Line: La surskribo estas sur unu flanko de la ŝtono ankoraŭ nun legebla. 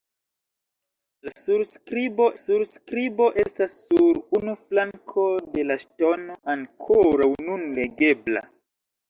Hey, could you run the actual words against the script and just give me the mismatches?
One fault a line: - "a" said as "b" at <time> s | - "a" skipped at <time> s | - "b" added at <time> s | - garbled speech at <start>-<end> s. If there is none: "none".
- "surskribo" added at 2.4 s